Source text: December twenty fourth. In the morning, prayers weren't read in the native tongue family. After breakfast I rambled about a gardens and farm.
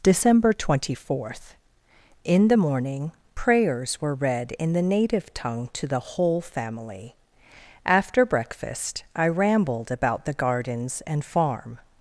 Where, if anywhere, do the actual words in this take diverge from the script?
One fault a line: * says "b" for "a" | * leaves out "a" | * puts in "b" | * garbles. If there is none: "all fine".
* says "were" for "weren't"
* puts in "to the whole"
* says "the" for "a"